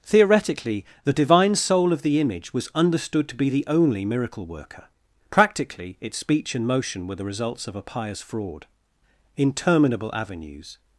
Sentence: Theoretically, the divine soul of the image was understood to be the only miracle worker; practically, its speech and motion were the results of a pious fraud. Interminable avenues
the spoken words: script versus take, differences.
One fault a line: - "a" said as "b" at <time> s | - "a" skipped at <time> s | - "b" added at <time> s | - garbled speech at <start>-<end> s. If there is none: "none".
none